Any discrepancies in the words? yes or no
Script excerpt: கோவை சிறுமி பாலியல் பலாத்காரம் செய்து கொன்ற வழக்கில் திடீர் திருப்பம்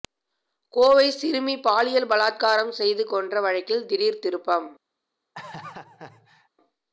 no